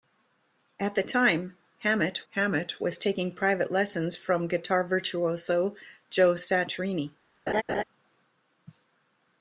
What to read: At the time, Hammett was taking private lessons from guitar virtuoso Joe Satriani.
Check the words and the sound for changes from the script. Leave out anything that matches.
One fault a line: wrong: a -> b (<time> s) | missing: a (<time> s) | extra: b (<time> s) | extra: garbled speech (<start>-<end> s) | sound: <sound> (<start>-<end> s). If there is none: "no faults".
extra: Hammett (2.3 s)
sound: laugh (7.5-7.8 s)